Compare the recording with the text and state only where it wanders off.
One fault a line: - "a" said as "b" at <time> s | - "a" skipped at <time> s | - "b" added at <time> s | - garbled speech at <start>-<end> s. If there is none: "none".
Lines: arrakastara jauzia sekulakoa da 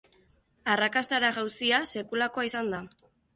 - "izan" added at 2.5 s